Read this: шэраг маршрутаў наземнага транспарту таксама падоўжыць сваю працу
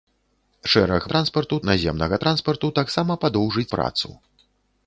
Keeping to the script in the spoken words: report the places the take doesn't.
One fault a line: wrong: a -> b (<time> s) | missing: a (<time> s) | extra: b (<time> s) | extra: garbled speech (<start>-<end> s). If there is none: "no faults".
wrong: маршрутаў -> транспарту (1.1 s)
missing: сваю (3.7 s)